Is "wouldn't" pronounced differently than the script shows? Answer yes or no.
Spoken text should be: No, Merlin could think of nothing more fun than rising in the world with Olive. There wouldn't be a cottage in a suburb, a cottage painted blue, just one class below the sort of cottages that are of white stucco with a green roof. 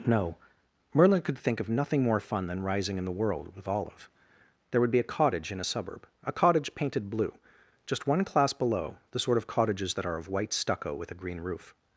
yes